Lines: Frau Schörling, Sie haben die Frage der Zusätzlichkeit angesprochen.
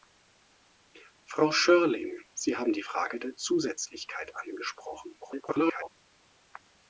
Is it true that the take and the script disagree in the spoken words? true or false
true